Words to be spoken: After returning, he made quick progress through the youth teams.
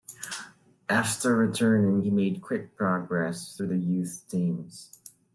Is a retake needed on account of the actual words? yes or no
no